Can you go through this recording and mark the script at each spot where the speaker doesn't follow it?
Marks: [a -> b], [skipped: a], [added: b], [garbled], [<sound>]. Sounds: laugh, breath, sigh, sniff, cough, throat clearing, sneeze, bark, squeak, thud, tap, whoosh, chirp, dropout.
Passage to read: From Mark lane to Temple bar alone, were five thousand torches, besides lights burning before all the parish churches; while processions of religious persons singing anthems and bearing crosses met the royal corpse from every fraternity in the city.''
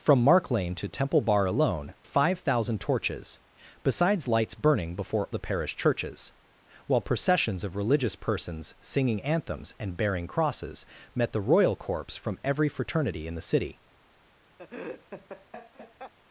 From Mark lane to Temple bar alone, [skipped: were] five thousand torches, besides lights burning before [skipped: all] the parish churches; while processions of religious persons singing anthems and bearing crosses met the royal corpse from every fraternity in the city.'' [laugh]